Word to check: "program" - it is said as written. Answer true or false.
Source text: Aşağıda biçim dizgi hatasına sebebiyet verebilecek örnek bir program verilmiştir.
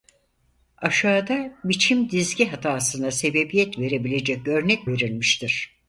false